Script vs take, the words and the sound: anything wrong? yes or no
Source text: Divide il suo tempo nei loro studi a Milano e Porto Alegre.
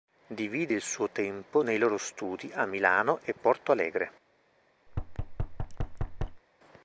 yes